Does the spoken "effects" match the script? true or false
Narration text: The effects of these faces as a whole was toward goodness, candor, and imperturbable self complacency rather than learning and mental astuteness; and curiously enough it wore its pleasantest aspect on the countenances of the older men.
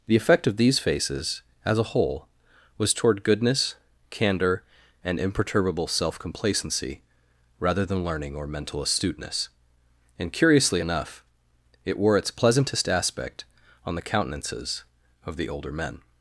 false